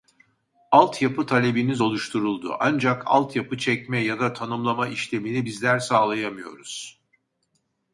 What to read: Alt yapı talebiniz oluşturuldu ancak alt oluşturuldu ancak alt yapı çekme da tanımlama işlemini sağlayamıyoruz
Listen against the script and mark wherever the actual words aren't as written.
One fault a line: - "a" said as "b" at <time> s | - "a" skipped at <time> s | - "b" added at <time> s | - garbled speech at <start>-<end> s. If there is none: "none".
- "oluşturuldu ancak alt" skipped at 3.3 s
- "ya" added at 4.0 s
- "bizler" added at 5.4 s